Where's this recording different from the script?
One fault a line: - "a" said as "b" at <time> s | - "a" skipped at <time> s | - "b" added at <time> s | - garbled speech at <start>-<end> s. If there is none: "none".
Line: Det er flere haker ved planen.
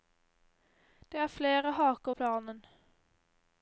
- "ved" skipped at 2.1 s